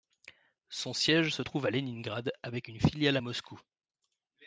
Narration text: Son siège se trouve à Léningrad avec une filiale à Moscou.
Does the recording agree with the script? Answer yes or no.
yes